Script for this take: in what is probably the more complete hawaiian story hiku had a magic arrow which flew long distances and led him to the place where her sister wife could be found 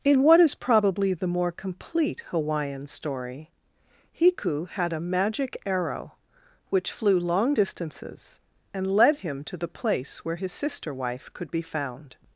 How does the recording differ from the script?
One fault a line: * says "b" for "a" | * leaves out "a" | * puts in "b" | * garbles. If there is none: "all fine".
* says "his" for "her"